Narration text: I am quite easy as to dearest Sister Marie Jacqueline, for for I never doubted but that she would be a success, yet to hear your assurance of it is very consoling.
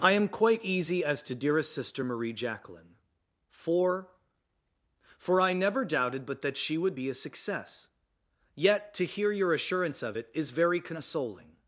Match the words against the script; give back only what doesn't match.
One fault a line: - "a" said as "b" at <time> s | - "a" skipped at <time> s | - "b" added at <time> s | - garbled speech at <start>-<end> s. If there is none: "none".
none